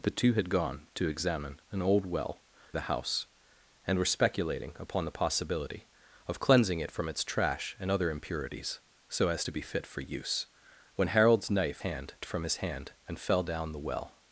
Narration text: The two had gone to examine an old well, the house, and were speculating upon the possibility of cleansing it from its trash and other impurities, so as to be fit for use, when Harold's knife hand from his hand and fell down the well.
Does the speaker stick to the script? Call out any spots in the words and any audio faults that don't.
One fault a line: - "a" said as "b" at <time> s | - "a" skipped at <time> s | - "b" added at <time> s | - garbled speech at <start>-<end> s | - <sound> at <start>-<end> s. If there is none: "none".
none